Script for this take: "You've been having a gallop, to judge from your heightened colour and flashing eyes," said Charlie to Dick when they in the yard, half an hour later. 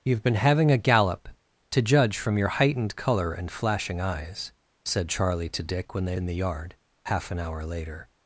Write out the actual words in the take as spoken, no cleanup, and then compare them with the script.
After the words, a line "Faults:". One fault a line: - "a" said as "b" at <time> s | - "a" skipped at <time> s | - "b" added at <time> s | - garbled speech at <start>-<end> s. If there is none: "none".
"You've been having a gallop, to judge from your heightened colour and flashing eyes," said Charlie to Dick when they in the yard, half an hour later.
Faults:
none